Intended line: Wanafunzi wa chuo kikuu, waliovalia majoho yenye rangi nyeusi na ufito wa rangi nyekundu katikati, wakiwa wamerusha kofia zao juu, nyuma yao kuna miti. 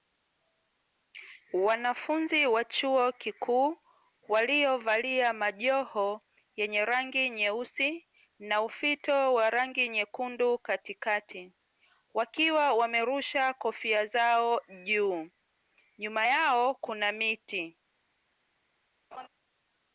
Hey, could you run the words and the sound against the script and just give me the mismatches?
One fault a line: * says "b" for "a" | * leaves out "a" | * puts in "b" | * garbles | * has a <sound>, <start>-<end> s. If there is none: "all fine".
* has a laugh, 19.1-19.3 s